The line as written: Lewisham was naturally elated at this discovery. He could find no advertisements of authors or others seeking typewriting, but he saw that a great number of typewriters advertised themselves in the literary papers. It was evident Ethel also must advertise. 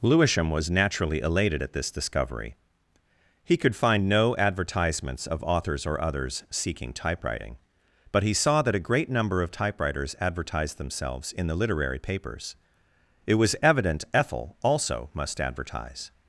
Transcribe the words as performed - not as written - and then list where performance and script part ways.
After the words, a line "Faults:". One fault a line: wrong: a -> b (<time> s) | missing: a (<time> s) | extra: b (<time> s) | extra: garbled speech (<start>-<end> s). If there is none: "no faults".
Lewisham was naturally elated at this discovery. He could find no advertisements of authors or others seeking typewriting, but he saw that a great number of typewriters advertised themselves in the literary papers. It was evident Ethel also must advertise.
Faults:
no faults